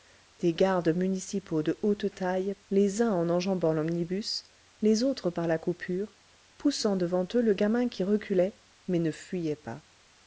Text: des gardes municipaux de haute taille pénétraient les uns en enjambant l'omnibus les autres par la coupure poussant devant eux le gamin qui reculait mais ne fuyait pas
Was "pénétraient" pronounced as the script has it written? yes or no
no